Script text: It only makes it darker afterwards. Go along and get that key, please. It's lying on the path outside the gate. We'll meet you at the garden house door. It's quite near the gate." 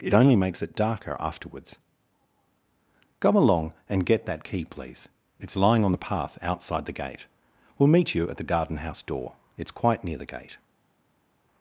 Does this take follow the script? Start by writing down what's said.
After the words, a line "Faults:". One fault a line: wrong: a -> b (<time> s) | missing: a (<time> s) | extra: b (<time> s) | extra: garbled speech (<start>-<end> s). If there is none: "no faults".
It only makes it darker afterwards. Go along and get that key, please. It's lying on the path outside the gate. We'll meet you at the garden house door. It's quite near the gate."
Faults:
no faults